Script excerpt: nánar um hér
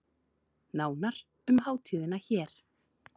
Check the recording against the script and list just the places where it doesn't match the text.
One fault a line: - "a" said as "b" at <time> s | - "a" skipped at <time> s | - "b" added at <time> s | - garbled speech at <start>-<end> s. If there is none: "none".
- "hátíðina" added at 1.6 s